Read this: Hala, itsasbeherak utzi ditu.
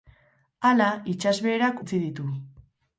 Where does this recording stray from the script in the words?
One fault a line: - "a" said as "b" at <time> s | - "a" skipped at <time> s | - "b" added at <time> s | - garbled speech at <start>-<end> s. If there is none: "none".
none